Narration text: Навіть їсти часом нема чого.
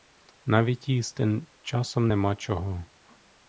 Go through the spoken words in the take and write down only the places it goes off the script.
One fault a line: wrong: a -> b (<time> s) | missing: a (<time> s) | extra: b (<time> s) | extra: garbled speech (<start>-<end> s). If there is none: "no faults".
no faults